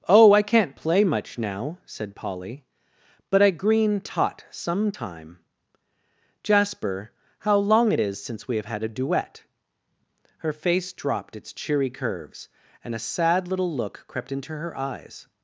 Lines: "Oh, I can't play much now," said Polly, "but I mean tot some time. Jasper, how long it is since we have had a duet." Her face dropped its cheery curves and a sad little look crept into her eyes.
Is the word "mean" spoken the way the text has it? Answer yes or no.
no